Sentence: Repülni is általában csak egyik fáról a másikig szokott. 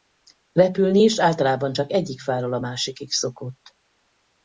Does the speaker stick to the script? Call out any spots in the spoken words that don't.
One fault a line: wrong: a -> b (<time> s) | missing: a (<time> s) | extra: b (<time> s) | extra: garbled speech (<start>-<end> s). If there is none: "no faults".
no faults